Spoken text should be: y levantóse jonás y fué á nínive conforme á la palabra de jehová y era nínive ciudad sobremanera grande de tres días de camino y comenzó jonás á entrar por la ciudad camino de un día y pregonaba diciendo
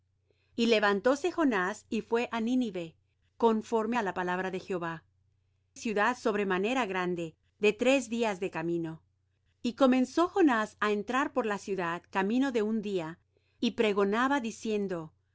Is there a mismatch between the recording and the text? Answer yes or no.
yes